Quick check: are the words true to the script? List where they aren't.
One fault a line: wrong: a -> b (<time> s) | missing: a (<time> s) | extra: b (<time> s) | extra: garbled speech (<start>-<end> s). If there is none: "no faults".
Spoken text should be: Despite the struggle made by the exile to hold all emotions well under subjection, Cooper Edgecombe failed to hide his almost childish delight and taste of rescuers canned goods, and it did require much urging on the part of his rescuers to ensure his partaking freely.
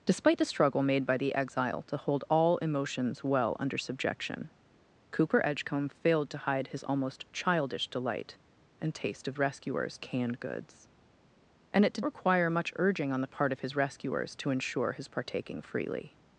no faults